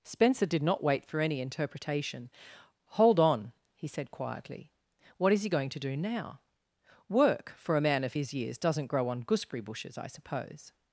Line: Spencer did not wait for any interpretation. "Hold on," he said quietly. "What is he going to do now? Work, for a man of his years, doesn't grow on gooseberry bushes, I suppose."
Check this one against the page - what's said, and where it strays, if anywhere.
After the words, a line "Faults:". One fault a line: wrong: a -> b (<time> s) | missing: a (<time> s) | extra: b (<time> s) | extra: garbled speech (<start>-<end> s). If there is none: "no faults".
Spencer did not wait for any interpretation. "Hold on," he said quietly. "What is he going to do now? Work, for a man of his years, doesn't grow on gooseberry bushes, I suppose."
Faults:
no faults